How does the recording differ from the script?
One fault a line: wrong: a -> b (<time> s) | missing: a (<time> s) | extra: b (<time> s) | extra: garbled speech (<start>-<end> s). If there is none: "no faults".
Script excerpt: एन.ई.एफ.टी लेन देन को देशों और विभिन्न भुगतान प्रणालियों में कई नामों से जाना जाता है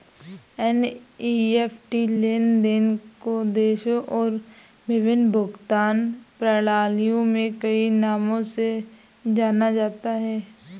no faults